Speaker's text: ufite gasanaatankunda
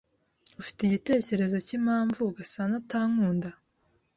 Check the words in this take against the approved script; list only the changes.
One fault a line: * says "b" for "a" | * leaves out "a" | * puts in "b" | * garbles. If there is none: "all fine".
* puts in "igitekerezo cyimpamvu"